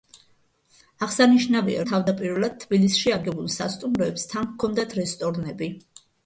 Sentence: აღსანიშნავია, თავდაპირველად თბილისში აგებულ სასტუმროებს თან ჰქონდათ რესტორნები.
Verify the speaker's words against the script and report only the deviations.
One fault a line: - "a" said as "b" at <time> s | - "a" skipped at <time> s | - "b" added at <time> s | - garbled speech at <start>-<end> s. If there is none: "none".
none